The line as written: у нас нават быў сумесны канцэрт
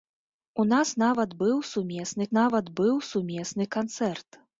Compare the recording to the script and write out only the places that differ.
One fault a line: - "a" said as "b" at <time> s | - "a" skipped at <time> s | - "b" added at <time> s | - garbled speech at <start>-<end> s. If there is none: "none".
- "нават быў сумесны" added at 2.4 s